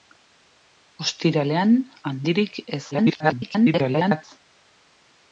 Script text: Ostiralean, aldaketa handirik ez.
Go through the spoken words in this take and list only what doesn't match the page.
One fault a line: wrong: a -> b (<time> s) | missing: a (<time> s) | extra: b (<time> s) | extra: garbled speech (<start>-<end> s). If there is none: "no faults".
missing: aldaketa (1.8 s)
extra: garbled speech (2.9-4.2 s)